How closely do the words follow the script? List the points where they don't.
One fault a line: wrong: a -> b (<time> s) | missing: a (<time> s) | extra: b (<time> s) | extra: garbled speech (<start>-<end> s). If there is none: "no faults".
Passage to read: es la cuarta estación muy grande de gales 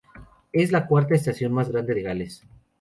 wrong: muy -> más (1.5 s)